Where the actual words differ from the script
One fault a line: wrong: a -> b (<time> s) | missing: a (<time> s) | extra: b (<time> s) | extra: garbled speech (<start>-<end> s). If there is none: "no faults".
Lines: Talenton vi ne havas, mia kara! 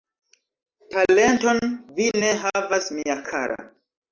no faults